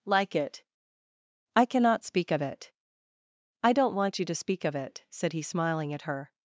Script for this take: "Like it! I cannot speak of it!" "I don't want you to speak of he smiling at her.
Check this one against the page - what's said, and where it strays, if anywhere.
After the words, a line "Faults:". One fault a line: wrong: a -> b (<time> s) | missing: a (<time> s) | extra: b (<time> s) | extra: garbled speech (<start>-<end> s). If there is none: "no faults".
"Like it! I cannot speak of it!" "I don't want you to speak of it," said he smiling at her.
Faults:
extra: it said (4.8 s)